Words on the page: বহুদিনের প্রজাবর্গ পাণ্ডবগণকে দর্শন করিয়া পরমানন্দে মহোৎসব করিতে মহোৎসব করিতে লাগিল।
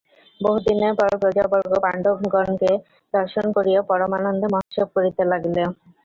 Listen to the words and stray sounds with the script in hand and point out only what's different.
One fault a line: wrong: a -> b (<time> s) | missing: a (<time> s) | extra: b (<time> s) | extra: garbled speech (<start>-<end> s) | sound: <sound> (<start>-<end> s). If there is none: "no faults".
extra: পর (0.9 s)
sound: dropout (4.6-4.7 s)
missing: মহোৎসব করিতে (5.2 s)